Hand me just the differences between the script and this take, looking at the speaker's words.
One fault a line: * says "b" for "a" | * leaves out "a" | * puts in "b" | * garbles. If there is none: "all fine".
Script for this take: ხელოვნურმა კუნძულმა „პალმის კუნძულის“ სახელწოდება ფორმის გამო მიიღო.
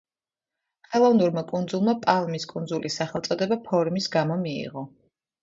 all fine